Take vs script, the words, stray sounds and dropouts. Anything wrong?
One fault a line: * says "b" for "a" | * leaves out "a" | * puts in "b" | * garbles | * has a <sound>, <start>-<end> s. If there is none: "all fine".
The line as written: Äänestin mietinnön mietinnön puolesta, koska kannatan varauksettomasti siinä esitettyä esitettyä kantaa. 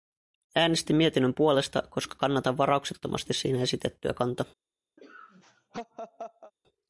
* leaves out "mietinnön"
* leaves out "esitettyä"
* has a laugh, 5.0-6.5 s